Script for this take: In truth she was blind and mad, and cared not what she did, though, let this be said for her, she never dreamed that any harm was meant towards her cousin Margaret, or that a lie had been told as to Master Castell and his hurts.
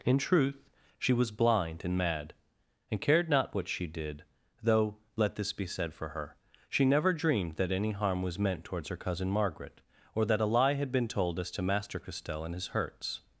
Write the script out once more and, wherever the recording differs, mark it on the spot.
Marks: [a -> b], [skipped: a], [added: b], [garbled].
In truth she was blind and mad, and cared not what she did, though, let this be said for her, she never dreamed that any harm was meant towards her cousin Margaret, or that a lie had been told as to Master Castell and his hurts.